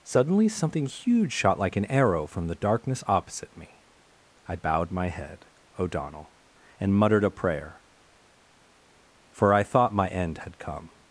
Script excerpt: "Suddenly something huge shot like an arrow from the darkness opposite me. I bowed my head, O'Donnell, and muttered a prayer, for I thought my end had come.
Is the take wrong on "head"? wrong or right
right